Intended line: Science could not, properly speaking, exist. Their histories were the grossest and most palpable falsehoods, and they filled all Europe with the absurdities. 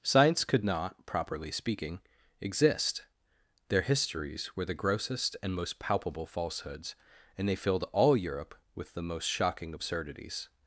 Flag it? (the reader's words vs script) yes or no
yes